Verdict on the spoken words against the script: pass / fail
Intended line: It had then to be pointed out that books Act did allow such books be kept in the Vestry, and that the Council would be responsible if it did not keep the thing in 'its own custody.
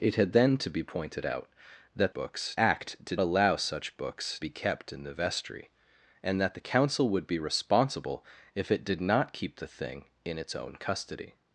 pass